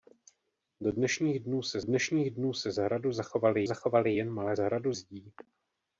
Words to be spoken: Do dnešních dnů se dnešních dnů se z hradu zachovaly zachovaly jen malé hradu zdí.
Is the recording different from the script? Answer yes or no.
no